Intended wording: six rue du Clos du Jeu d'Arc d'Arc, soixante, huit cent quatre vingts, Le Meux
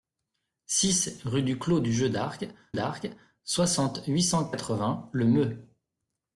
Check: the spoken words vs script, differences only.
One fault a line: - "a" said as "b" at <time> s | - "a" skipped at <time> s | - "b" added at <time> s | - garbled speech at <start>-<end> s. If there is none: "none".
none